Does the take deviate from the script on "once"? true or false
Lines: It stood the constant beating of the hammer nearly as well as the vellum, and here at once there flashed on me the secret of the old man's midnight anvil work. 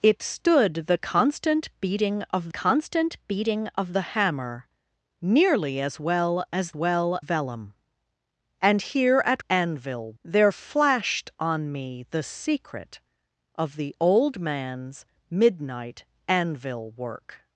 true